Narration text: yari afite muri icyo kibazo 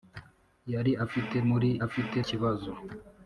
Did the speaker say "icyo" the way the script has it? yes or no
no